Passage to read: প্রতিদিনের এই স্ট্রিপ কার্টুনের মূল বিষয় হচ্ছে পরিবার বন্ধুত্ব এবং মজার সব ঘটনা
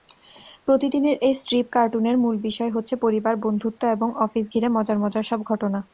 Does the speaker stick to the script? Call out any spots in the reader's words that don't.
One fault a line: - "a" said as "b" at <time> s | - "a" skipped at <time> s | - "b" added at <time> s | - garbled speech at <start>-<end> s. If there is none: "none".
- "অফিস ঘিরে মজার" added at 4.2 s